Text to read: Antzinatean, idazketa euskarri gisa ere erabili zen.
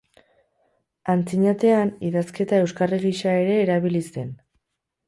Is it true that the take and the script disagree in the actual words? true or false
false